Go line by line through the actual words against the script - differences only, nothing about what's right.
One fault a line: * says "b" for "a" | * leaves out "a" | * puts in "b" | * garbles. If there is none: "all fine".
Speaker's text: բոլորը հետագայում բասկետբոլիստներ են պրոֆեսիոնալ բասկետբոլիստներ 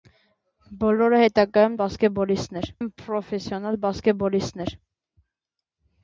all fine